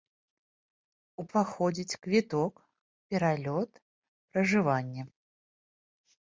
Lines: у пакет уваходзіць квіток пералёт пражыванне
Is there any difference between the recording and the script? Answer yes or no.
yes